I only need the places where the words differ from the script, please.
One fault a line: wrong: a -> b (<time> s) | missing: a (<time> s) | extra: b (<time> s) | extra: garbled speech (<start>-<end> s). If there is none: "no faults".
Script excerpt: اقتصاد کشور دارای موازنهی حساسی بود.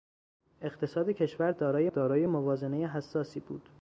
extra: دارای (1.9 s)